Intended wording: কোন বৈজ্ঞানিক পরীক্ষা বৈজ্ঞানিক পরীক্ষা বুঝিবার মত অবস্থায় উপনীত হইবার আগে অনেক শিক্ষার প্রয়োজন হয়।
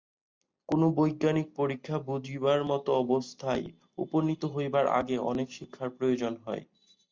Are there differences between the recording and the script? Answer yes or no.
yes